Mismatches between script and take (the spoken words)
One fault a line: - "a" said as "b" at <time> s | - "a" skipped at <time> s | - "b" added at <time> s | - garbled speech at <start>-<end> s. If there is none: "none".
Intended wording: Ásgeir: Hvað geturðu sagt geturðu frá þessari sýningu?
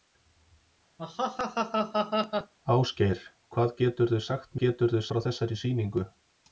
none